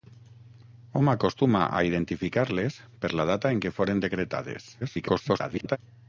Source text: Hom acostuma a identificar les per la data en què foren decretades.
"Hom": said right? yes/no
yes